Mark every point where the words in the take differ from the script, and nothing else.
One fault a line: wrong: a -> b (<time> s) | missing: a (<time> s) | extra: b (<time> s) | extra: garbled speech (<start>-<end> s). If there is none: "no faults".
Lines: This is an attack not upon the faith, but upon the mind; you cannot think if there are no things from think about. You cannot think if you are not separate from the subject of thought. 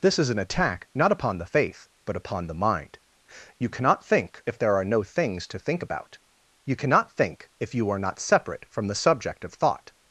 wrong: from -> to (5.5 s)